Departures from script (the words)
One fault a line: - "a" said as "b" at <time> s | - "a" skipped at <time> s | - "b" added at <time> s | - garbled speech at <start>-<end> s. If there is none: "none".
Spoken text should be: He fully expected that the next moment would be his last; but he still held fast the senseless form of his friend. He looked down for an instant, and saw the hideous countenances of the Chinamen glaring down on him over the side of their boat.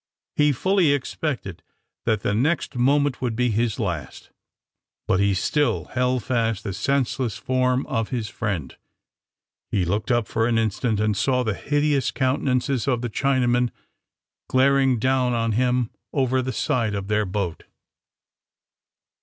- "down" said as "up" at 10.1 s